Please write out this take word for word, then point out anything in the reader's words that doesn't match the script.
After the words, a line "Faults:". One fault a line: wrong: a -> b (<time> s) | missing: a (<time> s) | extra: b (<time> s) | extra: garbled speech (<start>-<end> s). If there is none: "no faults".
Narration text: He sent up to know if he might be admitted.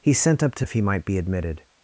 He sent up to if he might be admitted.
Faults:
missing: know (0.7 s)